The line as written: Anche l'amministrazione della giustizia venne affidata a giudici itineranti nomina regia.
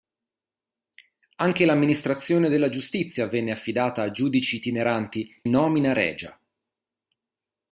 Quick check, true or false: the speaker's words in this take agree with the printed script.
true